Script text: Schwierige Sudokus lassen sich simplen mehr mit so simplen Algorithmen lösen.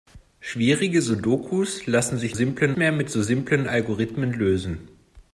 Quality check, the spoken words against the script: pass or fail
pass